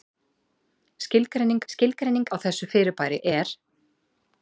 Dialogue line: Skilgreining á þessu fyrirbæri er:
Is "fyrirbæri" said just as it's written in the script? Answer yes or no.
yes